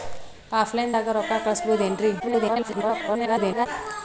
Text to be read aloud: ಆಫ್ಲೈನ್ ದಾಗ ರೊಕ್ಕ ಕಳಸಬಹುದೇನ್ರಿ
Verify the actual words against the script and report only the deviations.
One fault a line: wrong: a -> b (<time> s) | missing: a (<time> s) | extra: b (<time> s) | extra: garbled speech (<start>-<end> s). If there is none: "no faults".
extra: garbled speech (2.2-3.7 s)